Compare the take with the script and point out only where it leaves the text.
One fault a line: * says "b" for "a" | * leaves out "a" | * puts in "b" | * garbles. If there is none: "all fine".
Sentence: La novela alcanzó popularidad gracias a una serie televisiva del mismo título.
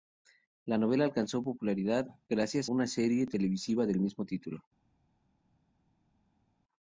* leaves out "a"